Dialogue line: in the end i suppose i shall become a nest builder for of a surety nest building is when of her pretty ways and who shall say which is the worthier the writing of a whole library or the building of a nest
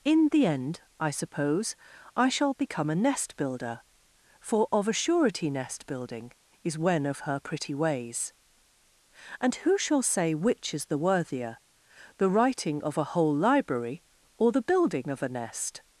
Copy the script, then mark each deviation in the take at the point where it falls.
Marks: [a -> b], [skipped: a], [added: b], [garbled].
in the end i suppose i shall become a nest builder for of a surety nest building is when of her pretty ways and who shall say which is the worthier the writing of a whole library or the building of a nest